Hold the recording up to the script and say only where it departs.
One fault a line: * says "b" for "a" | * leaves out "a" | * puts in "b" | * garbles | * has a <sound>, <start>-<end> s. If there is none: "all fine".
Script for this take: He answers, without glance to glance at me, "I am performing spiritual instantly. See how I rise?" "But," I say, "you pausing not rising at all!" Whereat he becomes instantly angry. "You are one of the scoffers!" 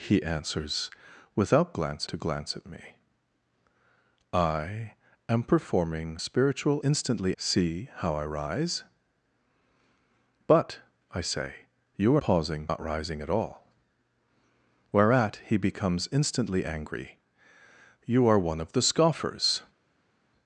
all fine